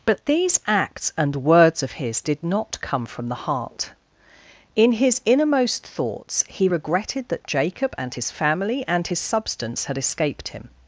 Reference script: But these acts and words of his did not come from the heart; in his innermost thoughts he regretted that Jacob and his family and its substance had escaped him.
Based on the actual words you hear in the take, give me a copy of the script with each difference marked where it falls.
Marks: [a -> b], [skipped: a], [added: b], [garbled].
But these acts and words of his did not come from the heart; in his innermost thoughts he regretted that Jacob and his family and [its -> his] substance had escaped him.